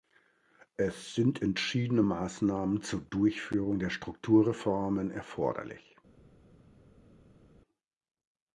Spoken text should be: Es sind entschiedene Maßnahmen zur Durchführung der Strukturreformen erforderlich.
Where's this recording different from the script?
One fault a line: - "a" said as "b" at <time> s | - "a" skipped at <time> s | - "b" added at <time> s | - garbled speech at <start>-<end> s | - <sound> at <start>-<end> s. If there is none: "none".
none